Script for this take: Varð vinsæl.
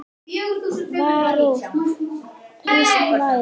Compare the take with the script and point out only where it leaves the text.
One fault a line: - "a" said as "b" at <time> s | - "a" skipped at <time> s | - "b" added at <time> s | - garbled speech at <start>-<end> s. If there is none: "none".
none